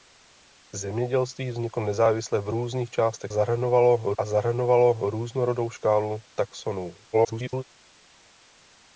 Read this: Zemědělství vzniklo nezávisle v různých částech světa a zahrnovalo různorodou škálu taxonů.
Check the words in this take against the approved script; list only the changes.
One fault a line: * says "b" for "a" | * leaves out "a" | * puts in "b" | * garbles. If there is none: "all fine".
* says "zahrnovalo" for "světa"
* garbles